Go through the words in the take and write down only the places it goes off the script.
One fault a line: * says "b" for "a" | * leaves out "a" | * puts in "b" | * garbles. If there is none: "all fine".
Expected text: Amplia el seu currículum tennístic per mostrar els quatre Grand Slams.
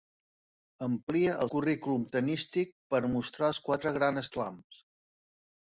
* leaves out "seu"